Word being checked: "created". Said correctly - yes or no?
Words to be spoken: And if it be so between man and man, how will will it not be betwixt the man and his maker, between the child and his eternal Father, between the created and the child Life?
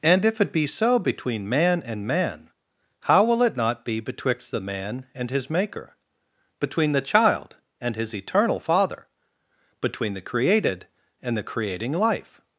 yes